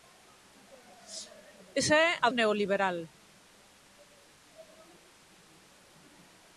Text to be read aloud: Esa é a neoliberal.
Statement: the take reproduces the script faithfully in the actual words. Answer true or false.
true